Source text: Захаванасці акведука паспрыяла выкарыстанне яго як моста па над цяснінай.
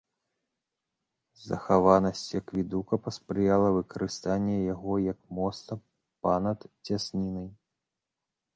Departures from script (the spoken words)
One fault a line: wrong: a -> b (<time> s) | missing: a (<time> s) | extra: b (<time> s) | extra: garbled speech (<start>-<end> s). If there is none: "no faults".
no faults